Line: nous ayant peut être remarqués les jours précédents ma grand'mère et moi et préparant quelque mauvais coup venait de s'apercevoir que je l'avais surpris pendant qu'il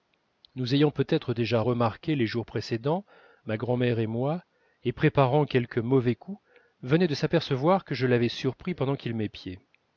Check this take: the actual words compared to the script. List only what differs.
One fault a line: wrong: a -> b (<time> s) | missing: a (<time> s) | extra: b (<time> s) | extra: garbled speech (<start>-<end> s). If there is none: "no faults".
extra: déjà (1.4 s)